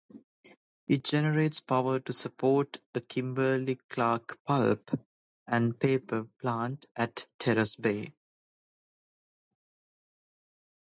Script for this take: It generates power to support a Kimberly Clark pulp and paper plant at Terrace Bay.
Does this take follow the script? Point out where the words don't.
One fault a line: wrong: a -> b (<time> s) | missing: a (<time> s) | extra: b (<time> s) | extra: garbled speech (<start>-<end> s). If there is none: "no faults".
no faults